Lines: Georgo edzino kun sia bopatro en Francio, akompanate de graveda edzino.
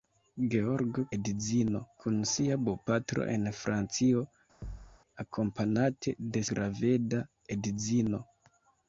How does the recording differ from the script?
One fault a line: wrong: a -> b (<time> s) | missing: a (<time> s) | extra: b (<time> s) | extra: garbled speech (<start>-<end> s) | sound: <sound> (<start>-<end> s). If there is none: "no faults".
sound: thud (4.6-5.0 s)